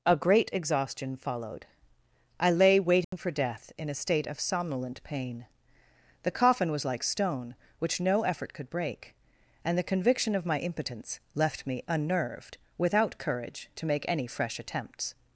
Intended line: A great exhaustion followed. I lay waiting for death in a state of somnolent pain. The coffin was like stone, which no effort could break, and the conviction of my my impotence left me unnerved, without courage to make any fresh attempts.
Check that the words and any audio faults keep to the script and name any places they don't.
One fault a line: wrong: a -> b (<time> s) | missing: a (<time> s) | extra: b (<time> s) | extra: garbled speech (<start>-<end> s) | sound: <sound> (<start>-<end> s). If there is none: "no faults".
sound: dropout (3.0-3.1 s)
missing: my (10.6 s)